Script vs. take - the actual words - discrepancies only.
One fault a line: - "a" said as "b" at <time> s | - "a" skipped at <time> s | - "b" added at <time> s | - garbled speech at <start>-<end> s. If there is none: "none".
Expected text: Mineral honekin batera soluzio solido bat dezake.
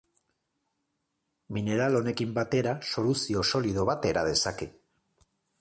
- "era" added at 4.2 s